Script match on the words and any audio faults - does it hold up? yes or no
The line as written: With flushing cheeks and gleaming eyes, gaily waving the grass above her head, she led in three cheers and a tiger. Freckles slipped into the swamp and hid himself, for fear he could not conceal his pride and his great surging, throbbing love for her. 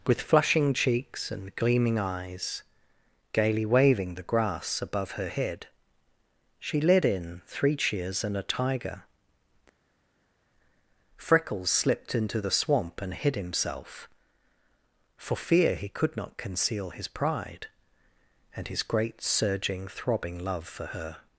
yes